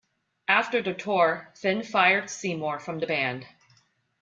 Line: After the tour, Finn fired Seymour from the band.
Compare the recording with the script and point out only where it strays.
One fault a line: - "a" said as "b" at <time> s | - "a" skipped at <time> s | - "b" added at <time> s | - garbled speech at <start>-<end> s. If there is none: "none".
none